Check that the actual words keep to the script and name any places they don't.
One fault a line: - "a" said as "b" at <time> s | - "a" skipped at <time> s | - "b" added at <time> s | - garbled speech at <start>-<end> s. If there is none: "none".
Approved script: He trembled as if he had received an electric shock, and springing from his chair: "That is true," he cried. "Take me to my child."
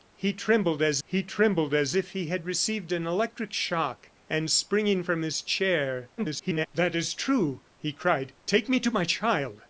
- "he trembled as" added at 1.0 s
- garbled speech at 6.2-6.7 s